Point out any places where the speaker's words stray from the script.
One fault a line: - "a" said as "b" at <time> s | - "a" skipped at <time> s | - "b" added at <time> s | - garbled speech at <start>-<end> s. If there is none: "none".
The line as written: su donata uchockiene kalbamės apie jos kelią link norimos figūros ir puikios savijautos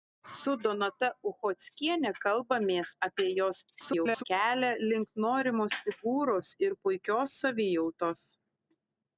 - garbled speech at 3.7-4.2 s